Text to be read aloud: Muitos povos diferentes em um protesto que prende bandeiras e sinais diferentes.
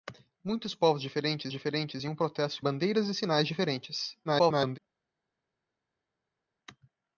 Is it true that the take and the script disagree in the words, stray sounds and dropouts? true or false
true